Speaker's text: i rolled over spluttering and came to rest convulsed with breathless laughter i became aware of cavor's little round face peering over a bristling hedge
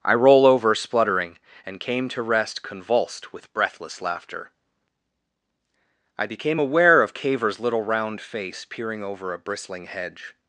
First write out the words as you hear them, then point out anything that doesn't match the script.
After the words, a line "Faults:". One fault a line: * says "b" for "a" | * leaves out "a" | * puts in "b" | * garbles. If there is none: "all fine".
i roll over spluttering and came to rest convulsed with breathless laughter i became aware of cavor's little round face peering over a bristling hedge
Faults:
* says "roll" for "rolled"